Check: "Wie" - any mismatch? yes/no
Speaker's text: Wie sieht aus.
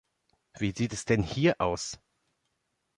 no